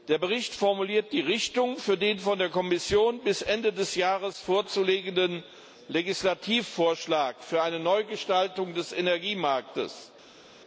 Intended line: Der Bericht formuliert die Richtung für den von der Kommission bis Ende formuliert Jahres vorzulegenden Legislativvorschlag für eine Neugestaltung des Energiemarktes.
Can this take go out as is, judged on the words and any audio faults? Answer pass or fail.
fail